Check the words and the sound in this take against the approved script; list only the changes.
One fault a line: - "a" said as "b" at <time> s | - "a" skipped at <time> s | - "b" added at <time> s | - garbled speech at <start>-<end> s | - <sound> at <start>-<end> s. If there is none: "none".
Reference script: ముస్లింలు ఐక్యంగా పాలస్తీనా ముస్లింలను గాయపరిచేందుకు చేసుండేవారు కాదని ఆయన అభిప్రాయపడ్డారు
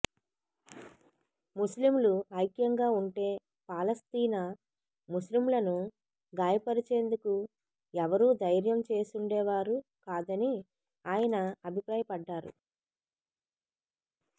- "ఉంటే" added at 3.0 s
- "ఎవరూ ధైర్యం" added at 7.9 s